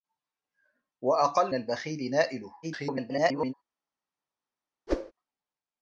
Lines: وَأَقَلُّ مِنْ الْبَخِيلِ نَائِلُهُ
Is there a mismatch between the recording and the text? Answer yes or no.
yes